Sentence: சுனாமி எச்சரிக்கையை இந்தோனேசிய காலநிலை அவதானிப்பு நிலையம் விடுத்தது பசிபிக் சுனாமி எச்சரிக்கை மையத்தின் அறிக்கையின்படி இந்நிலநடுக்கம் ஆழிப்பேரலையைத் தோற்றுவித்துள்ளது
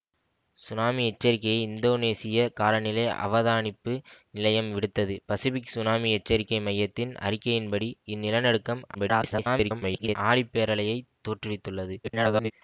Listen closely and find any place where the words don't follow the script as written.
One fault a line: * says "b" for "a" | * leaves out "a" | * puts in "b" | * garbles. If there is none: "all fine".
* garbles
* garbles